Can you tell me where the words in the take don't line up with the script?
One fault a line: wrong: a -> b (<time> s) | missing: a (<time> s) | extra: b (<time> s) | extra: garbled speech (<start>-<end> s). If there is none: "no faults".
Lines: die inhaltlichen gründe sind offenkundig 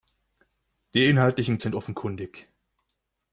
missing: gründe (1.6 s)